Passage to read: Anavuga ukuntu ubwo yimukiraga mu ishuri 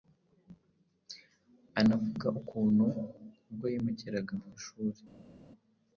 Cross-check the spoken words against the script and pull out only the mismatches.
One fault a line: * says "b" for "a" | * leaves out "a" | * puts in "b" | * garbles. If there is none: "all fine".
all fine